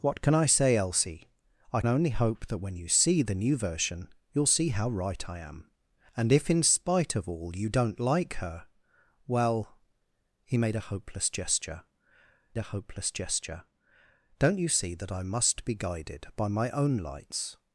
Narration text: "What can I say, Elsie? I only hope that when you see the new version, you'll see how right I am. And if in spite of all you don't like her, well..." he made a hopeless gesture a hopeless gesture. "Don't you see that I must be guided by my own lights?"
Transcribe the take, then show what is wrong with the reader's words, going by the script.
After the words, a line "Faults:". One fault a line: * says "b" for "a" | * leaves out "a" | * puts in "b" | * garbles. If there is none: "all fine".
"What can I say, Elsie? I only hope that when you see the new version, you'll see how right I am. And if in spite of all you don't like her, well..." he made a hopeless gesture a hopeless gesture. "Don't you see that I must be guided by my own lights?"
Faults:
all fine